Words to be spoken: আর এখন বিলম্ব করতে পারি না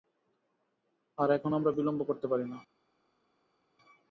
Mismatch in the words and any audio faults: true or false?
true